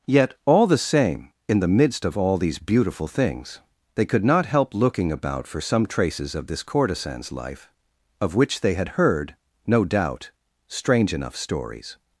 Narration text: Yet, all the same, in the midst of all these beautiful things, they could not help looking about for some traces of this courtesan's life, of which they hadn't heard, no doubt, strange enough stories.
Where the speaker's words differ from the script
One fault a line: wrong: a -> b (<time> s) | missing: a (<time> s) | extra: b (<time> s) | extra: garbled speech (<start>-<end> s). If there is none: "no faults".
wrong: hadn't -> had (8.7 s)